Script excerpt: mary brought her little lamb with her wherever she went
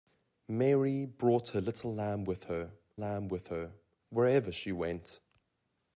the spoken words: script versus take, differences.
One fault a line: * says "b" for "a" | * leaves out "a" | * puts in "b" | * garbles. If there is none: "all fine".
* puts in "lamb with her"